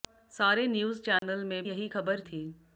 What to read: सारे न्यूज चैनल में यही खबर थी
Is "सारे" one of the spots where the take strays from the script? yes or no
no